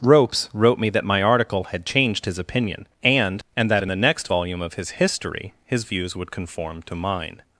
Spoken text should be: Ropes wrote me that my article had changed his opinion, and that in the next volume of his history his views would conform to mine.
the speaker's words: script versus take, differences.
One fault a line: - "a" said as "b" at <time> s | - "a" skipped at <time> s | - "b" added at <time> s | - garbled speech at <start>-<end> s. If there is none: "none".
- "and" added at 3.5 s